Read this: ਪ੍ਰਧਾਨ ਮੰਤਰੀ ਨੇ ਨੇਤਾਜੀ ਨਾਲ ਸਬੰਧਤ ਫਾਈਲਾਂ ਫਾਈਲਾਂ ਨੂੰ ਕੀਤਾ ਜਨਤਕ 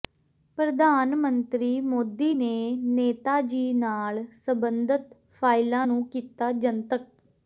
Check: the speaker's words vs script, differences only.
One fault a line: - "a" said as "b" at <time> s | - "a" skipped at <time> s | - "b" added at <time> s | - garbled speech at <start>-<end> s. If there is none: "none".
- "ਮੋਦੀ" added at 1.8 s
- "ਫਾਈਲਾਂ" skipped at 5.9 s